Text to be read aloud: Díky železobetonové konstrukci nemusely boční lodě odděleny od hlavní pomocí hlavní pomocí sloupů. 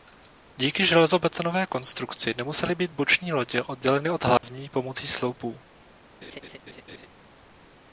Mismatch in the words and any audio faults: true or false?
true